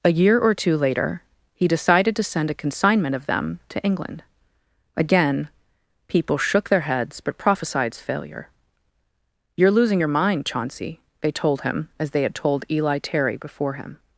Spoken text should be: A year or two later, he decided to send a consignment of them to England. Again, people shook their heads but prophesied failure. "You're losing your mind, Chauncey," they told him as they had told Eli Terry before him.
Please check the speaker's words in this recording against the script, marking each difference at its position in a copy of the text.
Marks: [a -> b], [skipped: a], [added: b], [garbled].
A year or two later, he decided to send a consignment of them to England. Again, people shook their heads but prophesied failure. "You're losing your mind, Chauncey," they told him as they had told Eli Terry before him.